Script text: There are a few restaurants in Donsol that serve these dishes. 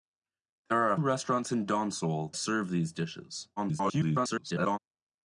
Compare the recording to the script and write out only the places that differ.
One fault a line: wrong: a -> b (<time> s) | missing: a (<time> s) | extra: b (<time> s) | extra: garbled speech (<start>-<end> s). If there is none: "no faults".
missing: few (1.0 s)
missing: that (2.3 s)
extra: garbled speech (3.6-4.8 s)